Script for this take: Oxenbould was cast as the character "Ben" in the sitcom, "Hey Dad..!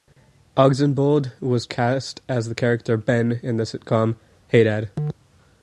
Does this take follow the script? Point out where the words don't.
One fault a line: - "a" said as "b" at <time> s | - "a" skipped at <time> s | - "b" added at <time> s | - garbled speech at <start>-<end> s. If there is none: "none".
none